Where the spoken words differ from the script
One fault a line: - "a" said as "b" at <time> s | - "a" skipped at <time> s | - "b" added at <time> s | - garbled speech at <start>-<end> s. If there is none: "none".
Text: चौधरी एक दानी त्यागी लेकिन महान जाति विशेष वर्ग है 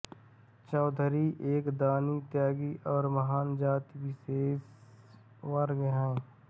- "लेकिन" said as "और" at 2.9 s